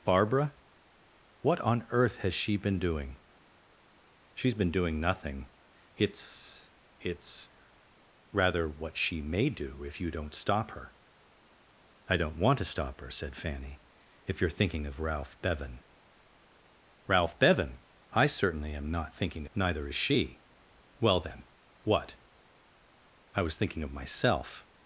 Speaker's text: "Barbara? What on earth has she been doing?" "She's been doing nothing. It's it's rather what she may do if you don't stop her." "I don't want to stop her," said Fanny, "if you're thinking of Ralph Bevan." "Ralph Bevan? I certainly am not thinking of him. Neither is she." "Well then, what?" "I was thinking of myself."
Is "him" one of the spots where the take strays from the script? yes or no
yes